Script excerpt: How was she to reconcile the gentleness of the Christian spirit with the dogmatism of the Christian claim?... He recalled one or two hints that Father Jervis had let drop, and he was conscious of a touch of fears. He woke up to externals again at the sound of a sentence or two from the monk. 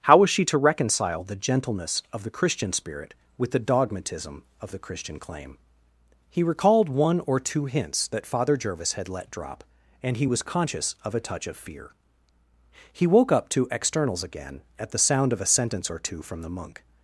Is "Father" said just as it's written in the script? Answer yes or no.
yes